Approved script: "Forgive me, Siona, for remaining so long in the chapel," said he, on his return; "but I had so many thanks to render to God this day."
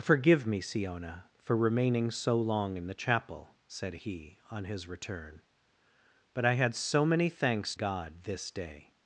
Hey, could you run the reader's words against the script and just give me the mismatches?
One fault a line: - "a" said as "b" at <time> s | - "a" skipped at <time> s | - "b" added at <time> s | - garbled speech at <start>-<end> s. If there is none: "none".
- "to render to" skipped at 7.8 s